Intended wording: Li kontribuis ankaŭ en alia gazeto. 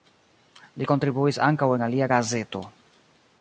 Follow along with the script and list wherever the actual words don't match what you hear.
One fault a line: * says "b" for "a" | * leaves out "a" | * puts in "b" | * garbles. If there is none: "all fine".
all fine